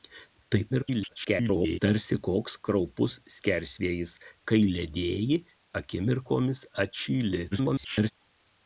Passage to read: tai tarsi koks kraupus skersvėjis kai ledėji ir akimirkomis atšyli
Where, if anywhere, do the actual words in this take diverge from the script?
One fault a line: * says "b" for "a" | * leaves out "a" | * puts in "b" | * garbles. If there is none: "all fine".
* garbles
* leaves out "ir"
* garbles